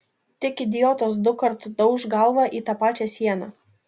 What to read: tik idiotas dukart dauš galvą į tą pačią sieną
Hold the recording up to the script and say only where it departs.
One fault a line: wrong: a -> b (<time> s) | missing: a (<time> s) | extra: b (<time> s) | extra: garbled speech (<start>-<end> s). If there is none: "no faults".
no faults